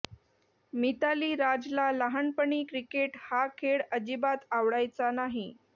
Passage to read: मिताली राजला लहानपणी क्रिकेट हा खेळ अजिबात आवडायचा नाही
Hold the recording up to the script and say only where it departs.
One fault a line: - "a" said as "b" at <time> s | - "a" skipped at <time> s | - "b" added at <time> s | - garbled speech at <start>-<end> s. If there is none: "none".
none